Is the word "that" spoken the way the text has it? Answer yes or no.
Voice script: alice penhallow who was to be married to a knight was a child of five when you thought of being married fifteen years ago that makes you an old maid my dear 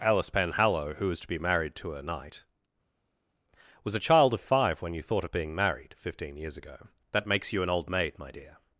yes